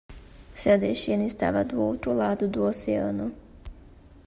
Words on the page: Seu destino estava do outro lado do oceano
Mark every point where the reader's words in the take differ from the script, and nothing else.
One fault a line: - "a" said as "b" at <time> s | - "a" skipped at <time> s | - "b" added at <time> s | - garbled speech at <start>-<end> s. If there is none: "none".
none